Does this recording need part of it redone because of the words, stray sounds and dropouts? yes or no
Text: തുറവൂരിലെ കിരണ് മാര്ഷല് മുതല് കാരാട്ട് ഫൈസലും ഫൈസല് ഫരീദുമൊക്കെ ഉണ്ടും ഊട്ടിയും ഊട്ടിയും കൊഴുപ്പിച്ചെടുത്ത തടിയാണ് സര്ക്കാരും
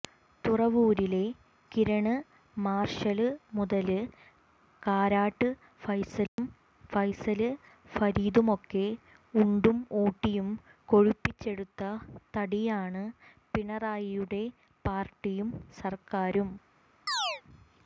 yes